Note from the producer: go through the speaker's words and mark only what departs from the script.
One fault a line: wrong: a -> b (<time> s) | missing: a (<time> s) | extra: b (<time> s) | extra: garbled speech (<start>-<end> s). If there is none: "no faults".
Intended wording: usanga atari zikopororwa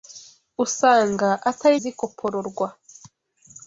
no faults